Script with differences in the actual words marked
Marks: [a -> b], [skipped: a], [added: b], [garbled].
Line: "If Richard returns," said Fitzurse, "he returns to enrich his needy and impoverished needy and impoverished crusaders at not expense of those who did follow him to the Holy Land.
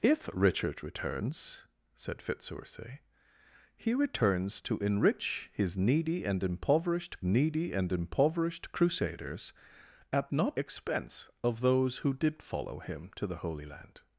"If Richard returns," said Fitzurse, "he returns to enrich his needy and impoverished needy and impoverished crusaders at not expense of those who did follow him to the Holy Land.